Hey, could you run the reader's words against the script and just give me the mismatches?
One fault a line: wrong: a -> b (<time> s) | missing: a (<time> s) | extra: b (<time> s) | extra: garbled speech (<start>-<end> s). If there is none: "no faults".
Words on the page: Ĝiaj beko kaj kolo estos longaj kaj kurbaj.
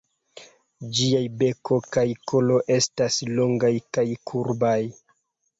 wrong: estos -> estas (2.8 s)